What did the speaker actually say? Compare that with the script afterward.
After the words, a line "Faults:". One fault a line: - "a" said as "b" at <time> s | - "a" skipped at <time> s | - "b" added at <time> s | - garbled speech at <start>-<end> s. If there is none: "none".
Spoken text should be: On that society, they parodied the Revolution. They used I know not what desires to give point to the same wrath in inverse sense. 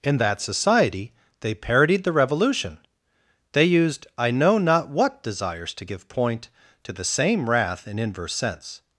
In that society, they parodied the Revolution. They used I know not what desires to give point to the same wrath in inverse sense.
Faults:
- "On" said as "In" at 0.0 s